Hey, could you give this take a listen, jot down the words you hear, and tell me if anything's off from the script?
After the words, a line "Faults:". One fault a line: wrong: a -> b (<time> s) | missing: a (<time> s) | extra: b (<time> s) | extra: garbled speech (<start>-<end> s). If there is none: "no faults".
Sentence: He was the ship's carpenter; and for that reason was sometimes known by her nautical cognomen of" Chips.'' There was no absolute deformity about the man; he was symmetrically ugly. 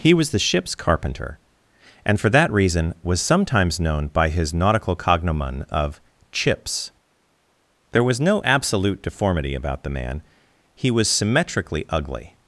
He was the ship's carpenter; and for that reason was sometimes known by his nautical cognomen of" Chips.'' There was no absolute deformity about the man; he was symmetrically ugly.
Faults:
wrong: her -> his (4.3 s)